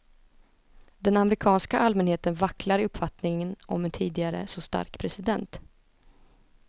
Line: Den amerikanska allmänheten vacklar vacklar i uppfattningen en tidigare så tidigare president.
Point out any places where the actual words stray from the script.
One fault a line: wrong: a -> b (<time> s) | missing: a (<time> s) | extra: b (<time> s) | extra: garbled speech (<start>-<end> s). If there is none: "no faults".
missing: vacklar (2.8 s)
extra: om (3.7 s)
wrong: tidigare -> stark (4.6 s)